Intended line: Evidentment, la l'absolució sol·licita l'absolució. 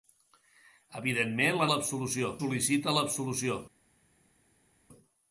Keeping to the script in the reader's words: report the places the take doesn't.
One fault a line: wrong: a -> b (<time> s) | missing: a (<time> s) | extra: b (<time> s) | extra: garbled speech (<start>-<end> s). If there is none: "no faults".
no faults